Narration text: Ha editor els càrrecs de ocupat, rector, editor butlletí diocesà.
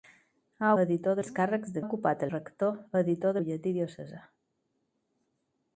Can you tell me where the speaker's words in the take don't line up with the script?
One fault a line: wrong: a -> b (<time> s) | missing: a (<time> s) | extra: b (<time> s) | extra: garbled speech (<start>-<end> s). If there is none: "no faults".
no faults